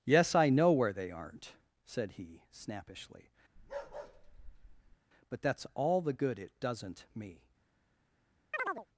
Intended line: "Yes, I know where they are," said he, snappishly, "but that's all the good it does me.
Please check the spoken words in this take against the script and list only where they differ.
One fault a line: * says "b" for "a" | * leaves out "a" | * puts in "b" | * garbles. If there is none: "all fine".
* says "aren't" for "are"
* says "doesn't" for "does"